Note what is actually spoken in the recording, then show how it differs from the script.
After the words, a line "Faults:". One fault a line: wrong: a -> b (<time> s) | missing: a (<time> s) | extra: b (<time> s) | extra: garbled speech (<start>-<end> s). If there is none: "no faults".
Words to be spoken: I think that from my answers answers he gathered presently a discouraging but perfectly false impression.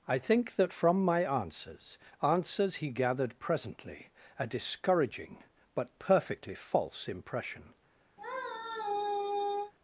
I think that from my answers answers he gathered presently a discouraging but perfectly false impression.
Faults:
no faults